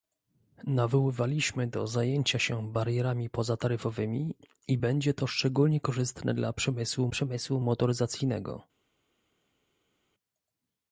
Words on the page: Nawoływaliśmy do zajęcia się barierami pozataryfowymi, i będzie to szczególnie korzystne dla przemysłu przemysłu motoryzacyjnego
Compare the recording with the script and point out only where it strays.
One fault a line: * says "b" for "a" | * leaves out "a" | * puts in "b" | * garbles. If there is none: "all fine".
all fine